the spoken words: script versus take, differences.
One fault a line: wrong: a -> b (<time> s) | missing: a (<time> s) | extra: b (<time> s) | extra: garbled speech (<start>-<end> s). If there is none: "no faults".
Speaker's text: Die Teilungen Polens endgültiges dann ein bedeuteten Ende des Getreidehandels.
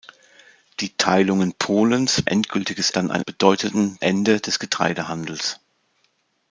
no faults